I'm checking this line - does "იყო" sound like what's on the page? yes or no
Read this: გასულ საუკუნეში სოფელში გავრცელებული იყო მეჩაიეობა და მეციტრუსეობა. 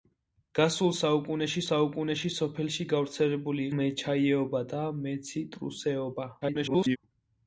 no